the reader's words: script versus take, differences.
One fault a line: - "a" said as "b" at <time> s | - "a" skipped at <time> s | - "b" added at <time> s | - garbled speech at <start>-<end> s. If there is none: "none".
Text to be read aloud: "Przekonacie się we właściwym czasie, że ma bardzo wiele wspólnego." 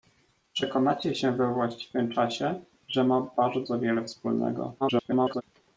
- garbled speech at 4.8-5.4 s